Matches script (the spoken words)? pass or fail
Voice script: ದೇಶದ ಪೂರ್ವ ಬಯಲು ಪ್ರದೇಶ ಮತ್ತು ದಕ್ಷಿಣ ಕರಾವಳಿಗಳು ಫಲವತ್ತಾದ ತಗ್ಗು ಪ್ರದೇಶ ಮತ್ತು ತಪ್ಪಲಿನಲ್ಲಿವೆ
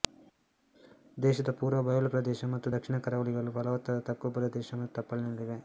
pass